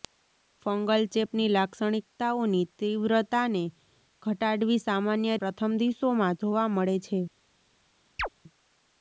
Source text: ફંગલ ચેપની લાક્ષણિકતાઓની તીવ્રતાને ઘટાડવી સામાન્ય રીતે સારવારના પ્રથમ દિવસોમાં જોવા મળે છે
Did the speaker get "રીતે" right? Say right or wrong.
wrong